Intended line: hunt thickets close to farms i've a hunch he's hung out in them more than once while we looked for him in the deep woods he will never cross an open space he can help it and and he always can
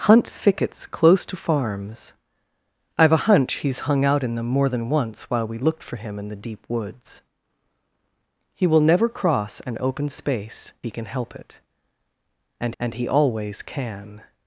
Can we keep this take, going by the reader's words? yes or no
yes